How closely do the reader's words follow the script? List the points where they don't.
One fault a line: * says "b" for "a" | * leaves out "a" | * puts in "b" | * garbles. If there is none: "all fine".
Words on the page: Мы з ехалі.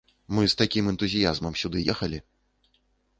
* puts in "такім энтузіязмам сюды"